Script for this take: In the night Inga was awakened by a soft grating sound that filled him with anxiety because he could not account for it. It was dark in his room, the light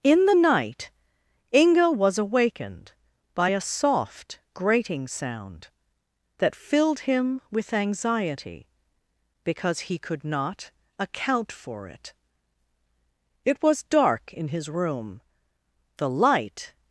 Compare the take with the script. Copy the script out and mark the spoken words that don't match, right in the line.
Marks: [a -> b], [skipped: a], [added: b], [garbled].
In the night Inga was awakened by a soft grating sound that filled him with anxiety because he could not account for it. It was dark in his room, the light